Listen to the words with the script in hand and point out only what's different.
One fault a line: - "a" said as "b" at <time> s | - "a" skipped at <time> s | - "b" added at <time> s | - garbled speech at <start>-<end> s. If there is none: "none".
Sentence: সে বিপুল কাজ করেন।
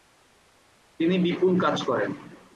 - "সে" said as "তিনি" at 1.0 s